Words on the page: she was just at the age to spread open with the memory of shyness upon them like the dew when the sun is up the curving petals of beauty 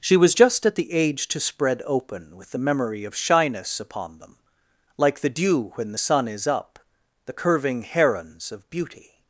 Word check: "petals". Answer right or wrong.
wrong